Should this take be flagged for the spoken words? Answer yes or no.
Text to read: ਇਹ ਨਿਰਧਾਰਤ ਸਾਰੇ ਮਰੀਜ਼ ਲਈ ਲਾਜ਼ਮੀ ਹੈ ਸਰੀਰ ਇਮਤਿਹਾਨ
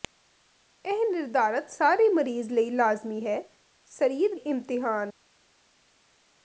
no